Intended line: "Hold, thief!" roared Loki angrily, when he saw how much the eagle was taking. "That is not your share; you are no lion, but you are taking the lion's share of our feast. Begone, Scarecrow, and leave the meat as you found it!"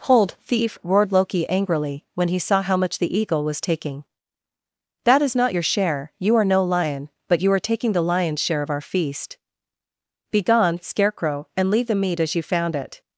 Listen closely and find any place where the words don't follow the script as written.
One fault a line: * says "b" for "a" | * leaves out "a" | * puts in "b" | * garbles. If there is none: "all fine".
all fine